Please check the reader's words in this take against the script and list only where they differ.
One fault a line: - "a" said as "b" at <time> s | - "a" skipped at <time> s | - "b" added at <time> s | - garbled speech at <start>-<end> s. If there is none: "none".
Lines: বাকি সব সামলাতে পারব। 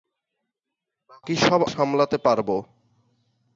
none